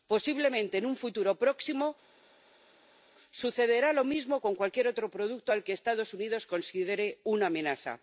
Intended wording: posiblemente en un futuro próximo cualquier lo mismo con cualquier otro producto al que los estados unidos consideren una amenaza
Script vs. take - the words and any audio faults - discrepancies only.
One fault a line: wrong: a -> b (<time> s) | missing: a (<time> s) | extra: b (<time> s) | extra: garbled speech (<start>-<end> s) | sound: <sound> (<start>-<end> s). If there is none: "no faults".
wrong: cualquier -> sucederá (3.3 s)